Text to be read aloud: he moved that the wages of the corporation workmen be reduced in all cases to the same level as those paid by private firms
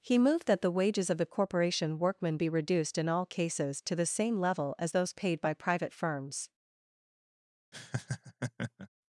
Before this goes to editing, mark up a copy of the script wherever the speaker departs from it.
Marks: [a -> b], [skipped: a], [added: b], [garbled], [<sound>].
he moved that the wages of the corporation workmen be reduced in all cases to the same level as those paid by private firms [laugh]